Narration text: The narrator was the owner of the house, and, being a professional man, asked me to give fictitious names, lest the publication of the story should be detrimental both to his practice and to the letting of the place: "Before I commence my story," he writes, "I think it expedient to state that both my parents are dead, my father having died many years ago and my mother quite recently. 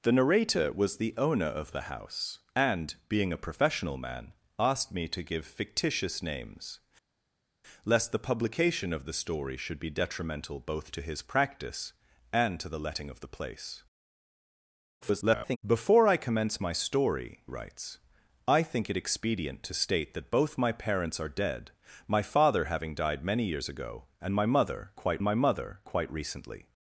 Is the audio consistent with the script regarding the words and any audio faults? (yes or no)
no